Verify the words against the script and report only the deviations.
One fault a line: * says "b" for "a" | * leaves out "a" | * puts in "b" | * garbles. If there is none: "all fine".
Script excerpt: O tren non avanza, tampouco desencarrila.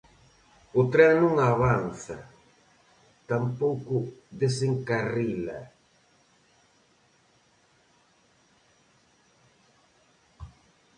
all fine